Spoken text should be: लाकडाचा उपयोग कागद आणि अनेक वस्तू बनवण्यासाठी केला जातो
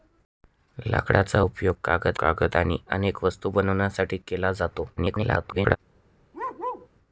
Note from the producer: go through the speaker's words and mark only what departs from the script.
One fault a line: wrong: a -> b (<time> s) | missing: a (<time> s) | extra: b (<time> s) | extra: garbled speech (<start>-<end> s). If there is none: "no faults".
extra: कागद (2.2 s)
extra: garbled speech (5.0-5.8 s)